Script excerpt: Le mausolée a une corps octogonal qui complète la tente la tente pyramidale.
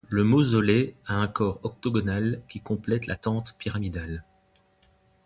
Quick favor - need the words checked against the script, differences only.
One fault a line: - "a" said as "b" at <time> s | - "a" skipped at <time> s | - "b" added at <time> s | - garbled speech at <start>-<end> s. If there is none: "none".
- "une" said as "un" at 1.2 s
- "la tente" skipped at 3.6 s